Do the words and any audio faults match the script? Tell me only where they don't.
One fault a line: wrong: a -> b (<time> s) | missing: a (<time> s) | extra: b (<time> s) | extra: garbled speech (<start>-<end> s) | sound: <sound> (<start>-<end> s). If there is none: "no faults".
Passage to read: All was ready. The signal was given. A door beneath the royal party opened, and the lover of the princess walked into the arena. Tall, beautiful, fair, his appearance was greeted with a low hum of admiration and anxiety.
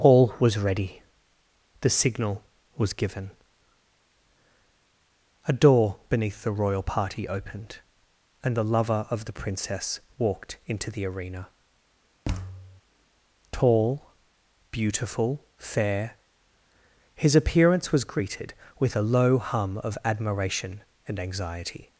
sound: thud (12.2-12.8 s)